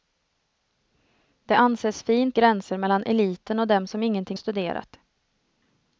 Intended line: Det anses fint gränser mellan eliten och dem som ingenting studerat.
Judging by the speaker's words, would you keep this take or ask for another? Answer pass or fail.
pass